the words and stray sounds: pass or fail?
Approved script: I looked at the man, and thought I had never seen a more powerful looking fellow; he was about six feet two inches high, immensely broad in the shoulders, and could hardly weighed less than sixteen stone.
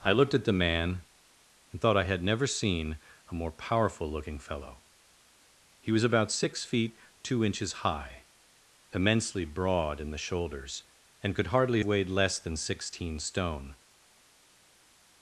pass